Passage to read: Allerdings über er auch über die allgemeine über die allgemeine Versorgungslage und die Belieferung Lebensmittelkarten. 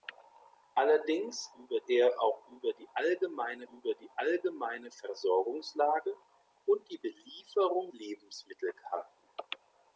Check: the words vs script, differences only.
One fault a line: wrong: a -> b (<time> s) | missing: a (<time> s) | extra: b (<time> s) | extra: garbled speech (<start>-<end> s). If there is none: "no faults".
no faults